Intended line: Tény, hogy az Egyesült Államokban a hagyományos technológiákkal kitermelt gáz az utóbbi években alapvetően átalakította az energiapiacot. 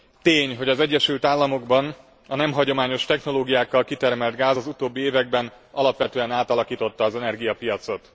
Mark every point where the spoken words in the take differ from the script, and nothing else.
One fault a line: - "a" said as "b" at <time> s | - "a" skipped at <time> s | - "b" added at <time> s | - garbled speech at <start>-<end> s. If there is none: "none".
- "nem" added at 2.3 s